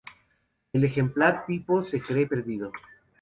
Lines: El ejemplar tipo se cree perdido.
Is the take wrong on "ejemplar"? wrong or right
right